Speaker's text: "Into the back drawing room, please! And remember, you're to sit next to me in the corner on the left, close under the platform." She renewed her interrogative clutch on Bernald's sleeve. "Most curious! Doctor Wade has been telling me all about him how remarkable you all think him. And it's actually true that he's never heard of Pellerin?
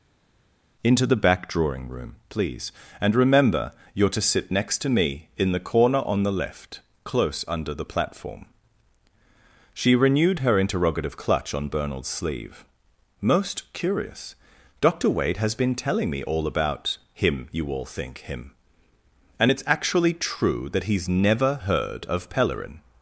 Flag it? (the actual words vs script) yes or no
yes